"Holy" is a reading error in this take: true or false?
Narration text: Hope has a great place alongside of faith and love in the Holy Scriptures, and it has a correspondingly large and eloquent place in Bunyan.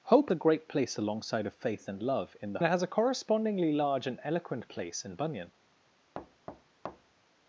true